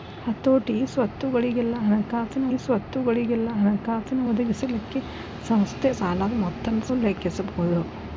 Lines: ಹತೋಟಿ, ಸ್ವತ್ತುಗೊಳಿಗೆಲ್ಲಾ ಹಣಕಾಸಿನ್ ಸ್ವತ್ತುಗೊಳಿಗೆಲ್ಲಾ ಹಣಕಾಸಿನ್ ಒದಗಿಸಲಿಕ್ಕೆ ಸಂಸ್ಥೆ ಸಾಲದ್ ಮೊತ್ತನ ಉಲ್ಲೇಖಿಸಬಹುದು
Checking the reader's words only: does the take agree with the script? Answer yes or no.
yes